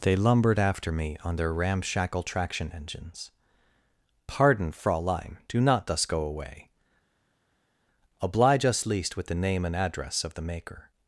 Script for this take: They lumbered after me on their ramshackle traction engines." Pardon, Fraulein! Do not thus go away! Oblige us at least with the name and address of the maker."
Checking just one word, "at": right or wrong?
wrong